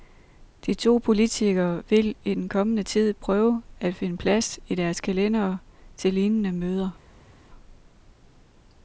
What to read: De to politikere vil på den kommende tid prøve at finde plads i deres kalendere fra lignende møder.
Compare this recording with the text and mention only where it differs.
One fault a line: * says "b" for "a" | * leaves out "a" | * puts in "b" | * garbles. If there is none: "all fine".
* says "i" for "på"
* says "til" for "fra"